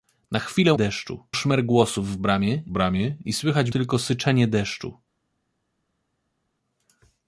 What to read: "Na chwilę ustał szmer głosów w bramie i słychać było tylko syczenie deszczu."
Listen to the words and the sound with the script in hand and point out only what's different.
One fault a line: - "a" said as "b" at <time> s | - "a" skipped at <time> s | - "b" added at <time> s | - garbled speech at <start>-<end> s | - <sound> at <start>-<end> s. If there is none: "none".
- "ustał" said as "deszczu" at 0.7 s
- "bramie" added at 2.7 s
- "było" skipped at 3.7 s